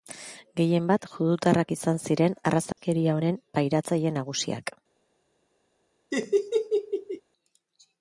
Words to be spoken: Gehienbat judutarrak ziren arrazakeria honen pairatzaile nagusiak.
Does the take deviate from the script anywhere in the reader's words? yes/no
yes